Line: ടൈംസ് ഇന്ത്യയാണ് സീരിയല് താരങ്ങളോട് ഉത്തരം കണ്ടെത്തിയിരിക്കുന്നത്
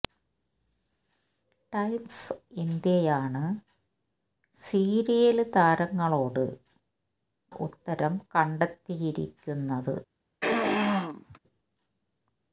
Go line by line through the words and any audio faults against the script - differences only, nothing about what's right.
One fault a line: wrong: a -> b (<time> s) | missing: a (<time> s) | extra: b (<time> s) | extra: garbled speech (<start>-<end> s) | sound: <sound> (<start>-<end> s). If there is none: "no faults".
sound: throat clearing (10.4-11.4 s)